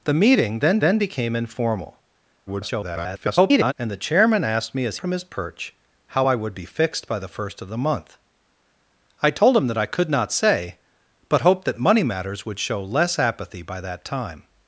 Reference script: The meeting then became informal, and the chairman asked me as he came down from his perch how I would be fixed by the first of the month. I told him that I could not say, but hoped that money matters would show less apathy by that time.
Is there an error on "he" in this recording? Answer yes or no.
yes